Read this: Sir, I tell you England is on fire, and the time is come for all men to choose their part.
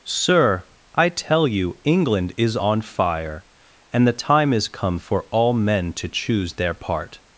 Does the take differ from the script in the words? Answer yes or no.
no